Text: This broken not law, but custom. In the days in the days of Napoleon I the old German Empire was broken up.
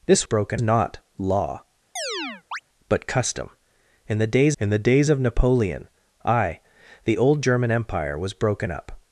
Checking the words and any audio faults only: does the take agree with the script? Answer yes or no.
no